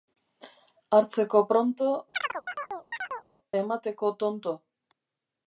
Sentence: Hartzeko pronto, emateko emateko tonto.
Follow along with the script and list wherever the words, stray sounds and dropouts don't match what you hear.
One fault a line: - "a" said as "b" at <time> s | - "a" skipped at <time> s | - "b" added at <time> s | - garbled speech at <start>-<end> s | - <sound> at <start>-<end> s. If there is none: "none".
- chirp at 2.1-3.3 s
- "emateko" skipped at 4.1 s